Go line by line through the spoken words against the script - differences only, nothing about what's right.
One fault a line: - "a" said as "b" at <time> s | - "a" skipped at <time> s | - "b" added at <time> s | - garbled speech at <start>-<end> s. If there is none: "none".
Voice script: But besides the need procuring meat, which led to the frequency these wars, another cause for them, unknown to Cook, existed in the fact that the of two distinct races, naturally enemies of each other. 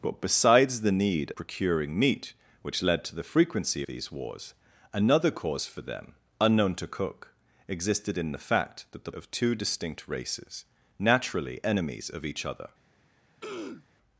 none